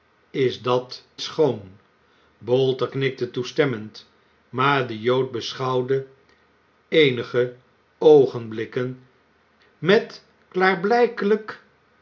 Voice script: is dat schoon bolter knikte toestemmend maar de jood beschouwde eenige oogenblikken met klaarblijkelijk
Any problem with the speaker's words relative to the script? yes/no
no